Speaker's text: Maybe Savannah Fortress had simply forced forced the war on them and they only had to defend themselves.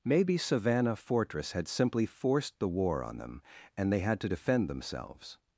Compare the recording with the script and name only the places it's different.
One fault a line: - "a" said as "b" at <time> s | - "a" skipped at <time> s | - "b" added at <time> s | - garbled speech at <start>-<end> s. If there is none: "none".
- "forced" skipped at 2.6 s
- "only" skipped at 4.0 s